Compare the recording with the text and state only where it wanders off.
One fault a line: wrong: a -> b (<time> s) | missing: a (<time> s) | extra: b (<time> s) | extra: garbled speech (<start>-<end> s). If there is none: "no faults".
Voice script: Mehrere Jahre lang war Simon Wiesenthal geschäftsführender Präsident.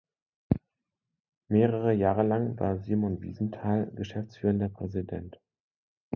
no faults